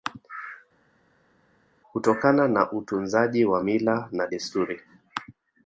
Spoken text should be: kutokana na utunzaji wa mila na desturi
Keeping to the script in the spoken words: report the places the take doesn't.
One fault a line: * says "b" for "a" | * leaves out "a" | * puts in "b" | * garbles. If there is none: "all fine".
all fine